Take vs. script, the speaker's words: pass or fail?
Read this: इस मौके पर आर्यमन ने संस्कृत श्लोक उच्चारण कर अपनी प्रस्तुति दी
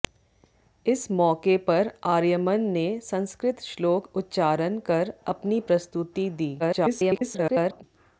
fail